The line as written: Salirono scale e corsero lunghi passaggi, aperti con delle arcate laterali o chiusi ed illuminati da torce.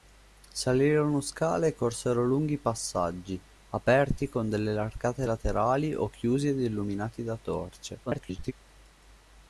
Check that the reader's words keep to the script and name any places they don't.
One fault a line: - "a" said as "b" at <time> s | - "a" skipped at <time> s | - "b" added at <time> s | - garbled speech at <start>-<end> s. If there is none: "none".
- garbled speech at 8.1-8.5 s